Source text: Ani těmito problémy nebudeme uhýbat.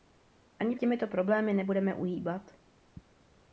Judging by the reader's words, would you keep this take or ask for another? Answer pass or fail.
pass